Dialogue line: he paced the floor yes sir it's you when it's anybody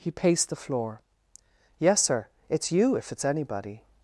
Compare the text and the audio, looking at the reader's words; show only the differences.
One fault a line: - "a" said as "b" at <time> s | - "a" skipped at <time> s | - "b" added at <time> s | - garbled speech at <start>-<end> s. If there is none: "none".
- "when" said as "if" at 3.0 s